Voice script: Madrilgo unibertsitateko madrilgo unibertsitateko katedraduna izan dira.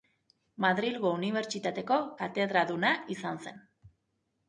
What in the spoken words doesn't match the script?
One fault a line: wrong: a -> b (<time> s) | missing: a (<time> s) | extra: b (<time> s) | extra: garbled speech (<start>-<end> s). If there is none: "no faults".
missing: madrilgo unibertsitateko (2.0 s)
wrong: dira -> zen (3.5 s)